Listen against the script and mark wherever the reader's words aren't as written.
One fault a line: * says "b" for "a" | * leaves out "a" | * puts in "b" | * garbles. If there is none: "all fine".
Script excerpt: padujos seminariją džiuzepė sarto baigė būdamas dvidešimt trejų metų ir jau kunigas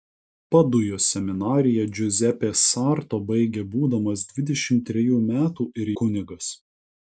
* leaves out "jau"